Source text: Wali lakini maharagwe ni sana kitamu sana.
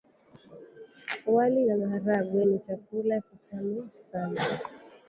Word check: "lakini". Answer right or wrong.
wrong